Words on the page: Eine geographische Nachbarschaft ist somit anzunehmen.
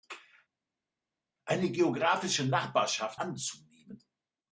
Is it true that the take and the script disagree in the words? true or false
true